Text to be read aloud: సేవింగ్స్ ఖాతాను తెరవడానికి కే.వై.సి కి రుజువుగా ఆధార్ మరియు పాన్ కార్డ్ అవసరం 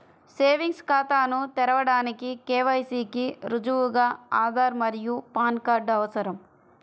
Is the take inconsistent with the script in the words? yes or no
no